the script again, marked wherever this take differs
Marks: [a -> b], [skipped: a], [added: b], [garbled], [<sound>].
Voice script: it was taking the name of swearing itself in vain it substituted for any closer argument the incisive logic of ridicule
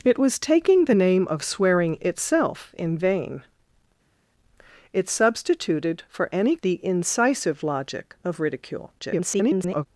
it was taking the name of swearing itself in vain it substituted for any [skipped: closer argument] the incisive logic of ridicule [garbled]